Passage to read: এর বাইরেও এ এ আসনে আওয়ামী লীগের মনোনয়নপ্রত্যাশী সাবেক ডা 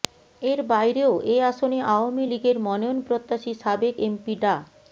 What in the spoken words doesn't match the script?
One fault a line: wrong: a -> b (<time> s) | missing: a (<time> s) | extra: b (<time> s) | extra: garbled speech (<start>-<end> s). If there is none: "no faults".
missing: এ (1.5 s)
extra: এমপি (4.0 s)